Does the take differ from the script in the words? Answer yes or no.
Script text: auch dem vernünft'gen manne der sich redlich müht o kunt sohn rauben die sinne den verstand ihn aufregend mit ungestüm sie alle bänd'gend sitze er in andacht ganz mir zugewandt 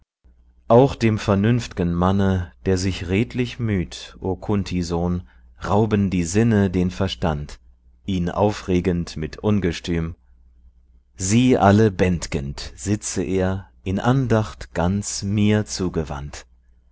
no